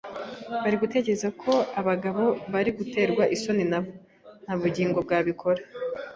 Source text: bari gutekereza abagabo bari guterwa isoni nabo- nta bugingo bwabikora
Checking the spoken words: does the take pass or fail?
fail